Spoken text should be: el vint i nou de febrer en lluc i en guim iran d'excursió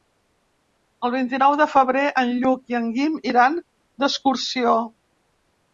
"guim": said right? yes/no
yes